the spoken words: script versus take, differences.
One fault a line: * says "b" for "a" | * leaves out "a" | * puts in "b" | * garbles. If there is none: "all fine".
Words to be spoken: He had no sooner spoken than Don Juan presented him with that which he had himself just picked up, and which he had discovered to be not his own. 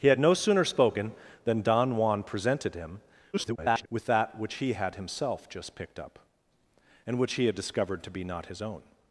* garbles